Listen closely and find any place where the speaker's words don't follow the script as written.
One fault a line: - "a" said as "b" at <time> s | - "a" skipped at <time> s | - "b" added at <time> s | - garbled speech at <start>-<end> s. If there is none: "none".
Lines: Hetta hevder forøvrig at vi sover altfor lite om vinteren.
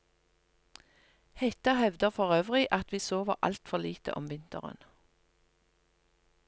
none